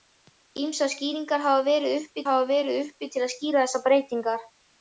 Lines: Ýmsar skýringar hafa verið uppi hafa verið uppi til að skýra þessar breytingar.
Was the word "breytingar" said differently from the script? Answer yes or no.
no